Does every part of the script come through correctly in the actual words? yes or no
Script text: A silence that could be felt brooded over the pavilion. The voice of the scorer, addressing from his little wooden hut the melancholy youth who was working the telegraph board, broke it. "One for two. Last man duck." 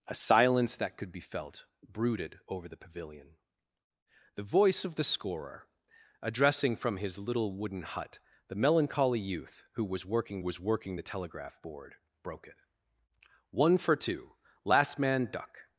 no